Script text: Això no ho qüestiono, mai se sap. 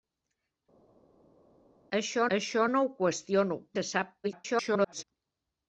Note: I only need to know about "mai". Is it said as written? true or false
false